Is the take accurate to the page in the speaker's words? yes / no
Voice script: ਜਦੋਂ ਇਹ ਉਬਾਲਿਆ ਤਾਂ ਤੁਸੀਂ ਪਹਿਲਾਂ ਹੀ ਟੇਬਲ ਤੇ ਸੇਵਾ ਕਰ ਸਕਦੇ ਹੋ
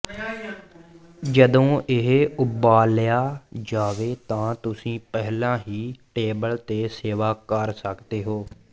no